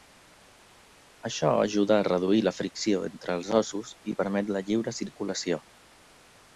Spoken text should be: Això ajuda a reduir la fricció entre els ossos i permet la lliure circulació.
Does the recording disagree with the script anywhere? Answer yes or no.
no